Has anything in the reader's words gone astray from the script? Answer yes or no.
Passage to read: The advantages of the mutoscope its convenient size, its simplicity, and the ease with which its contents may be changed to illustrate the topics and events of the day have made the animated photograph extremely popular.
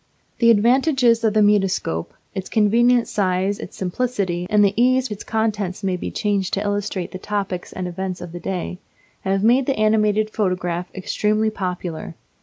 yes